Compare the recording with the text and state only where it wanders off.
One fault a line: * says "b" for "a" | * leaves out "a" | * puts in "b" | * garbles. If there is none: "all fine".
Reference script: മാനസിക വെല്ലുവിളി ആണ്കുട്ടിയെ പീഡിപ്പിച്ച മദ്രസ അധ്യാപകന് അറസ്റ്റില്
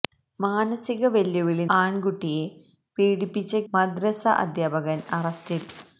all fine